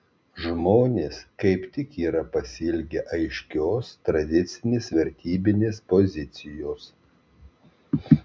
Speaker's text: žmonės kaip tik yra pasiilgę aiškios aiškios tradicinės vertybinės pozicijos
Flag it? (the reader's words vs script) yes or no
yes